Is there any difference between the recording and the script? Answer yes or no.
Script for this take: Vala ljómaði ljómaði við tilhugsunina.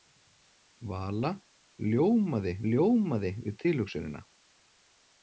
no